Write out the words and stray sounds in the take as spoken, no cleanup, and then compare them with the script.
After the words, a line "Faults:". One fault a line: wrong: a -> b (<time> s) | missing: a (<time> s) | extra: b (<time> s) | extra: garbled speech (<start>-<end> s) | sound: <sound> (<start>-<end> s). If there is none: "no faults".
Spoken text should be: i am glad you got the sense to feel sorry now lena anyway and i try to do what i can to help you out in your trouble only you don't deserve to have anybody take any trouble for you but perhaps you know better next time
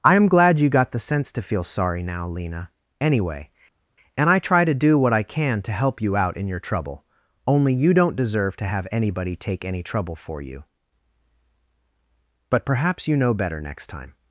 i am glad you got the sense to feel sorry now lena anyway and i try to do what i can to help you out in your trouble only you don't deserve to have anybody take any trouble for you but perhaps you know better next time
Faults:
no faults